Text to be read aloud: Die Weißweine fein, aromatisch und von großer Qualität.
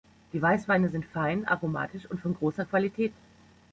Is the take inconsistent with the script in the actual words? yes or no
yes